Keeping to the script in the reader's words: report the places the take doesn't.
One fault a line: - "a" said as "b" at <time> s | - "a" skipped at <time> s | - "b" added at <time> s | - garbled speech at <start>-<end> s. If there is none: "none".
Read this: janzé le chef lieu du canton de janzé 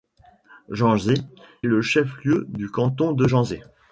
none